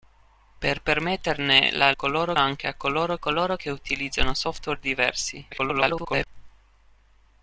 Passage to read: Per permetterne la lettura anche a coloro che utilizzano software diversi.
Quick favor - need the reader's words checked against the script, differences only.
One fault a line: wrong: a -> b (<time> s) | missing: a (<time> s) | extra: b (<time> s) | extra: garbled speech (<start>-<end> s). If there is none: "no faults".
wrong: lettura -> coloro (1.9 s)
extra: coloro (3.2 s)
extra: garbled speech (5.5-6.3 s)